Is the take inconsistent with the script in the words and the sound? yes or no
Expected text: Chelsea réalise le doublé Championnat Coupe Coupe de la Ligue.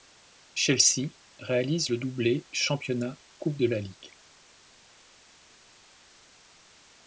yes